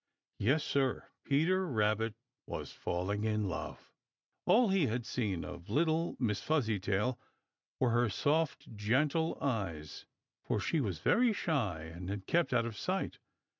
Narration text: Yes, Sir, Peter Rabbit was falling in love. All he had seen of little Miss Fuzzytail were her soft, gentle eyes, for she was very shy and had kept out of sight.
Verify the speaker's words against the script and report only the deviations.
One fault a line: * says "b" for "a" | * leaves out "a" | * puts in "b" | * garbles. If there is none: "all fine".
all fine